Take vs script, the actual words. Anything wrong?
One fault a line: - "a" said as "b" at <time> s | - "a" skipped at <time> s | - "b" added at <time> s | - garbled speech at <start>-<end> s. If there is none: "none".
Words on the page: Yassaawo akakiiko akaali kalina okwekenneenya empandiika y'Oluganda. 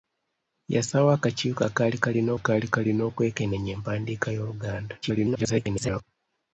- "akaali kalina" added at 2.4 s
- garbled speech at 5.0-6.0 s